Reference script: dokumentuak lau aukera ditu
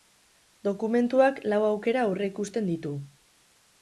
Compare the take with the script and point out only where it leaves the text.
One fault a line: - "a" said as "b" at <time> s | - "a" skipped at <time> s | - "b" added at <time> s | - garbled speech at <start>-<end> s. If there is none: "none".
- "aurreikusten" added at 2.1 s